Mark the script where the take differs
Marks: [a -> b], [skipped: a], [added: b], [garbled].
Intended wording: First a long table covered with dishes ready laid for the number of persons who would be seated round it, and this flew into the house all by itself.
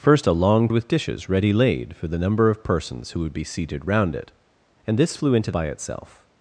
First a long [skipped: table covered] with dishes ready laid for the number of persons who would be seated round it, and this flew into [skipped: the house all] by itself.